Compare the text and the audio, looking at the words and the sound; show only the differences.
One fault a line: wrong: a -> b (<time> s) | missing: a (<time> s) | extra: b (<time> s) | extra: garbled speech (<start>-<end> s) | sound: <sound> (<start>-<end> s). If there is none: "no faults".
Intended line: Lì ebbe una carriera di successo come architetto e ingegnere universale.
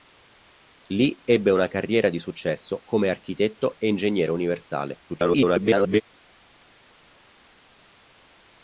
extra: garbled speech (5.1-6.0 s)